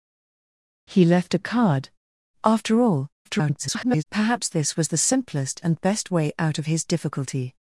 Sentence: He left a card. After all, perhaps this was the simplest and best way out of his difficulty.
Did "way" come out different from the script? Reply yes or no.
no